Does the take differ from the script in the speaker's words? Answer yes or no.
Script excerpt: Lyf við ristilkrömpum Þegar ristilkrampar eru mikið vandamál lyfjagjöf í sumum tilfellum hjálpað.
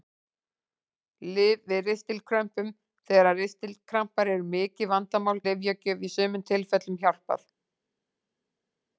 no